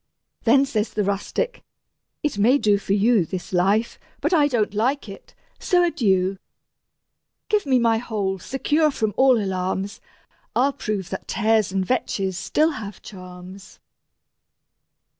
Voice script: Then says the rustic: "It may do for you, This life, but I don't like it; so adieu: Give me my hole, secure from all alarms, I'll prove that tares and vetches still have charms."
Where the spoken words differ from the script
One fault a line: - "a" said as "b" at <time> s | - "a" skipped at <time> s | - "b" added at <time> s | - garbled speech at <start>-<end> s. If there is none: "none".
none